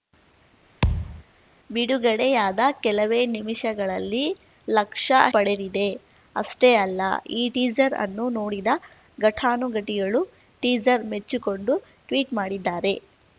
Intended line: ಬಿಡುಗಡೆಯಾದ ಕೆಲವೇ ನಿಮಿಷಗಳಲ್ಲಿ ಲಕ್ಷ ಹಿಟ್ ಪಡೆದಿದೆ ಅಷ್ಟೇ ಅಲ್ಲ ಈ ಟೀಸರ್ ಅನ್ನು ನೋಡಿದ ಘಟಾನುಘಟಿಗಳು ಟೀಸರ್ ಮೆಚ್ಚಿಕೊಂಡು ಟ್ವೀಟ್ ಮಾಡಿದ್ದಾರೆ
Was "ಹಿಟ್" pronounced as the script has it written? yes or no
no